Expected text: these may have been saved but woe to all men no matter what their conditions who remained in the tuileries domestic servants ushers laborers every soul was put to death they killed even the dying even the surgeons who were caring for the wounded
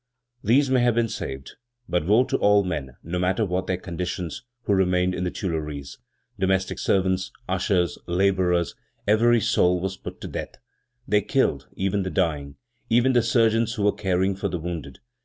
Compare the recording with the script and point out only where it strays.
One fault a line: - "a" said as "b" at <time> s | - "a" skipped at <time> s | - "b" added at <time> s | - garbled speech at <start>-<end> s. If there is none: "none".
none